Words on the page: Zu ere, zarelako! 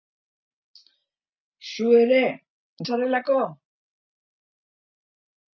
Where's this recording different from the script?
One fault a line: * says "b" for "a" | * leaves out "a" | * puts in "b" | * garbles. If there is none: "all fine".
all fine